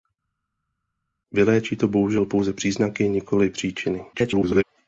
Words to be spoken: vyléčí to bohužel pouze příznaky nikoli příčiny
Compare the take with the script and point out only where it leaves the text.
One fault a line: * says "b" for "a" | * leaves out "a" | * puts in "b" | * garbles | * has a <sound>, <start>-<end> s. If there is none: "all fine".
* garbles